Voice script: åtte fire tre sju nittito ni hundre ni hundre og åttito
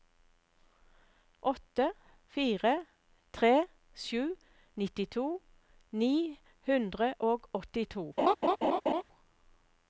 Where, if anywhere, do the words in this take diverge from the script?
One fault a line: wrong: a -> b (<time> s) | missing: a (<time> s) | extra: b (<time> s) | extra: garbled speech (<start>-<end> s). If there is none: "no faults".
missing: ni hundre (7.1 s)